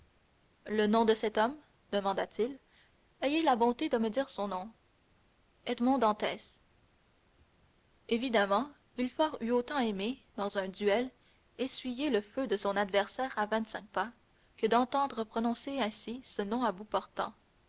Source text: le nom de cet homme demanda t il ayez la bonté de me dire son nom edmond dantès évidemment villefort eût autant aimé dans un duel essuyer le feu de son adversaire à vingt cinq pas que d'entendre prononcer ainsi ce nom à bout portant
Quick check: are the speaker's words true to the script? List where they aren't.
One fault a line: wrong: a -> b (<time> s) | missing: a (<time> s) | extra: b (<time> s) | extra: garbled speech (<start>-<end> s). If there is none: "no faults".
no faults